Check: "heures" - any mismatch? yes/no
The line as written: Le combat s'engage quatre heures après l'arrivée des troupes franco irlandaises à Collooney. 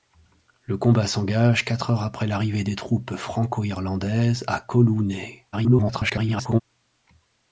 no